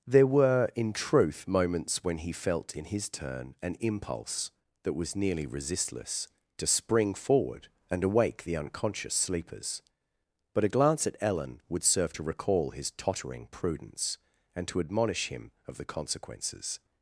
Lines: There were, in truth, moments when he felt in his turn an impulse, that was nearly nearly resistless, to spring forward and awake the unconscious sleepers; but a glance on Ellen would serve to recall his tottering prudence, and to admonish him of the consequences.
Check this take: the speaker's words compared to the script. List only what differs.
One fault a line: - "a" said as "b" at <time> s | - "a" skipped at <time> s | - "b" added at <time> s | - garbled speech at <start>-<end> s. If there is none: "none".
- "nearly" skipped at 5.5 s
- "on" said as "at" at 11.1 s